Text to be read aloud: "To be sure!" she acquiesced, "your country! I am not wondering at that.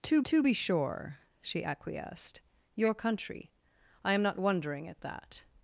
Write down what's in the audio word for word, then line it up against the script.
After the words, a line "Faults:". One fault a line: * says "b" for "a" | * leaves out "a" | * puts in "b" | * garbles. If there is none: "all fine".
"To to be sure!" she acquiesced, "your country! I am not wondering at that.
Faults:
* puts in "to"